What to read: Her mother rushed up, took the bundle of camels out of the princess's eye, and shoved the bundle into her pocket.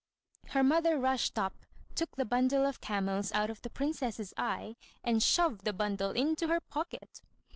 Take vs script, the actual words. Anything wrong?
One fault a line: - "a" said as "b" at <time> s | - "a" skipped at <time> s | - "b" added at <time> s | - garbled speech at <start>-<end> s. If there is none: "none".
none